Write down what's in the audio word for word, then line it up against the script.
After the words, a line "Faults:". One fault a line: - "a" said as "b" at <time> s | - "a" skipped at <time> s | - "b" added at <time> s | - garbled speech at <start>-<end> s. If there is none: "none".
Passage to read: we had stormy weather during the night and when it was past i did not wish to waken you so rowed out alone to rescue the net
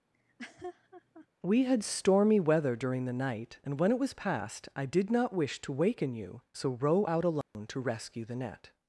we had stormy weather during the night and when it was past i did not wish to waken you so row out alone to rescue the net
Faults:
- "rowed" said as "row" at 6.7 s